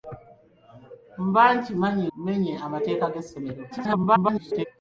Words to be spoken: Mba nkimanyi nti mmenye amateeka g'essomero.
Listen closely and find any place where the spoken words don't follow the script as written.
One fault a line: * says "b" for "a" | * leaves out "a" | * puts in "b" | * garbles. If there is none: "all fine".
* leaves out "nti"
* garbles